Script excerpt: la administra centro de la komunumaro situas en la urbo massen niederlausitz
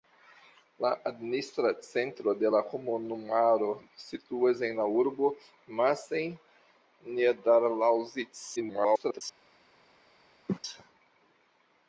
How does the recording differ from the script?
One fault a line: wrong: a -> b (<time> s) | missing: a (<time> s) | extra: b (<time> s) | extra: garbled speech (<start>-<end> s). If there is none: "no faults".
extra: garbled speech (8.6-9.2 s)